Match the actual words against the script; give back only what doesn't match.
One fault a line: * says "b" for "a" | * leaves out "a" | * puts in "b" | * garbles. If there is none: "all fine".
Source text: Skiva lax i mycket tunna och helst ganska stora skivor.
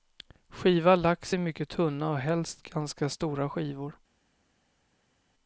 all fine